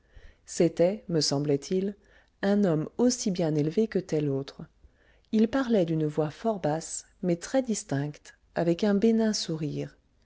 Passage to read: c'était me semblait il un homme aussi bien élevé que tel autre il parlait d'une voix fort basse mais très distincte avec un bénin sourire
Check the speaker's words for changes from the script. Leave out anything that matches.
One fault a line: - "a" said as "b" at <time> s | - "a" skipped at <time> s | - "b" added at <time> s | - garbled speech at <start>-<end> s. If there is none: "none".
none